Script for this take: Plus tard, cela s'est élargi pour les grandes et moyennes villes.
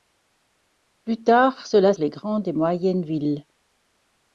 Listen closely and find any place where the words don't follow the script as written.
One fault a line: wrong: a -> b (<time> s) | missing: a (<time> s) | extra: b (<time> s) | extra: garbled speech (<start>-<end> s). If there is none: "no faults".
missing: s'est élargi pour (1.9 s)